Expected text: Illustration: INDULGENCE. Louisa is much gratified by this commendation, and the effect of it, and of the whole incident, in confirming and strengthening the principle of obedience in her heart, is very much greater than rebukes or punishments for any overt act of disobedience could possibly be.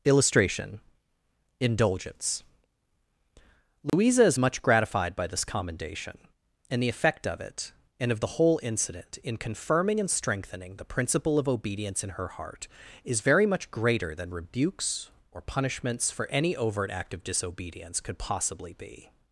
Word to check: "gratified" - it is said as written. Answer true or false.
true